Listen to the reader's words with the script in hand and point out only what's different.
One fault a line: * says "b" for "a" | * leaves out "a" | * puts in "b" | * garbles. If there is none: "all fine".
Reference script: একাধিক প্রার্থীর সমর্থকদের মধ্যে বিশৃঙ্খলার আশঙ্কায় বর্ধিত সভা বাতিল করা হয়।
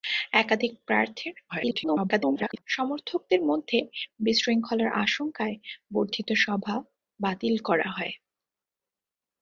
* garbles